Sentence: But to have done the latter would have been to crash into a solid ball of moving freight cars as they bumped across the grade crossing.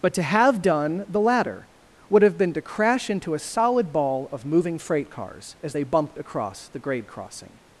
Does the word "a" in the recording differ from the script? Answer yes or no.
no